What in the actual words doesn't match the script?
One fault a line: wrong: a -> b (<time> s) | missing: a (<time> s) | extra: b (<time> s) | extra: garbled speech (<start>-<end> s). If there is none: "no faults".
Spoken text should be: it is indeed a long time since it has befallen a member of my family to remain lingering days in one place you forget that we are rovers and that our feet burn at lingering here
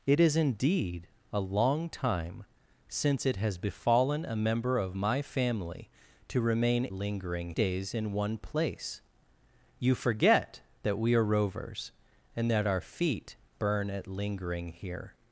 no faults